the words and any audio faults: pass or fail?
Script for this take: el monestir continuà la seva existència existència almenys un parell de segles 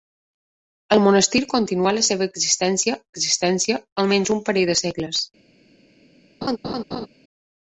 fail